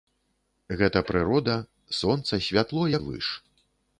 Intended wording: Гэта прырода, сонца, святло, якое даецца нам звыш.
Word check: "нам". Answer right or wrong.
wrong